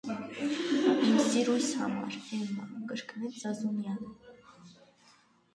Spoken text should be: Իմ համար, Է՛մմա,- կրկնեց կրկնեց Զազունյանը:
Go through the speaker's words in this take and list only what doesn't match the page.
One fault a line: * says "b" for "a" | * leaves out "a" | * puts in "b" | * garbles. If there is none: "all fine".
* puts in "սիրույս"
* leaves out "կրկնեց"